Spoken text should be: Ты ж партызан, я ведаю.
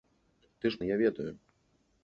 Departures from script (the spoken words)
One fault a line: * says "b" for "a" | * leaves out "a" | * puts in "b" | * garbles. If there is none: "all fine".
* leaves out "партызан"